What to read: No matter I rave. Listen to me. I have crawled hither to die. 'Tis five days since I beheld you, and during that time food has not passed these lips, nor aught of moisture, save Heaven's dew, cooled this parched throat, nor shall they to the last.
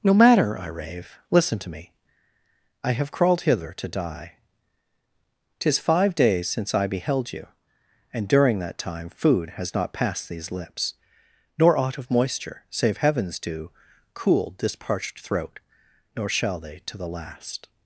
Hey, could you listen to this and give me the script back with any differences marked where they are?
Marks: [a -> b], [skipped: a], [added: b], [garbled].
No matter I rave. Listen to me. I have crawled hither to die. 'Tis five days since I beheld you, and during that time food has not passed these lips, nor aught of moisture, save Heaven's dew, cooled this parched throat, nor shall they to the last.